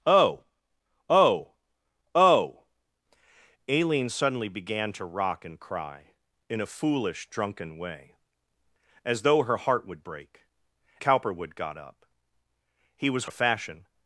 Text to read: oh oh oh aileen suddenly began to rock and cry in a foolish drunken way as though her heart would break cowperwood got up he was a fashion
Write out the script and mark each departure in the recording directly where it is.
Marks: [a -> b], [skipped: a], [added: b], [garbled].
oh oh oh aileen suddenly began to rock and cry in a foolish drunken way as though her heart would break cowperwood got up he was a fashion